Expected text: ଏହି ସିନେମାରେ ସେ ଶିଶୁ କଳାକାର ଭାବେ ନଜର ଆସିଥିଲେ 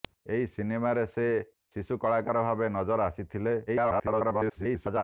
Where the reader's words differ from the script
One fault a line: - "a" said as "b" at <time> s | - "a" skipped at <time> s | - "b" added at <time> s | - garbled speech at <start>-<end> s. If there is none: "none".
- garbled speech at 3.7-5.0 s